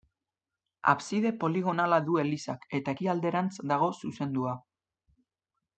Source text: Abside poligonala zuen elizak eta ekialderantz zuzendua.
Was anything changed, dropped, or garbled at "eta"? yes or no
no